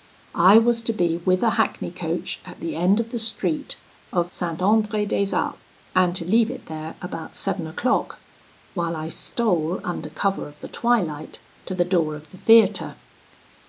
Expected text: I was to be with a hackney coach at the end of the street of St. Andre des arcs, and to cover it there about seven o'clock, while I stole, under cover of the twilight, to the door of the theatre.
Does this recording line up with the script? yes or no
no